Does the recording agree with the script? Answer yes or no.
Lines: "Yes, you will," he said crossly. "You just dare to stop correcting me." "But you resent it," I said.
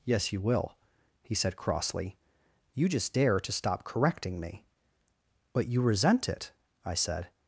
yes